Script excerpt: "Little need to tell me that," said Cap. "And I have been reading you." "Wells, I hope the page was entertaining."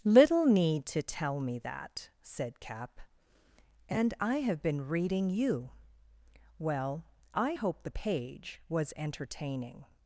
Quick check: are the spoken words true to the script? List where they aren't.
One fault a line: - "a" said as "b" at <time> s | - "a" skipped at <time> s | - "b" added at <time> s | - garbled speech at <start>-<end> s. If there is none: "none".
- "Wells" said as "Well" at 6.6 s